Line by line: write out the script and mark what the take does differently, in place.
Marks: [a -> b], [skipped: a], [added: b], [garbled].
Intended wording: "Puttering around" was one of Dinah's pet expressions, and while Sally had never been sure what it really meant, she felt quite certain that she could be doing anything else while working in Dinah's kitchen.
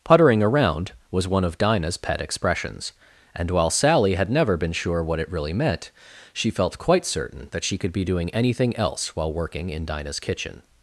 "Puttering around" was one of Dinah's pet expressions, and while Sally had never been sure what it really meant, she felt quite certain that she could be doing anything else while working in Dinah's kitchen.